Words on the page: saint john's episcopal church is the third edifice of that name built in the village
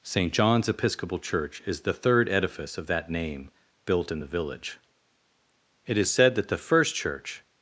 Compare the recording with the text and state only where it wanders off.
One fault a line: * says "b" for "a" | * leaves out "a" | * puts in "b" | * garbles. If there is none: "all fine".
* puts in "it is said that the first church"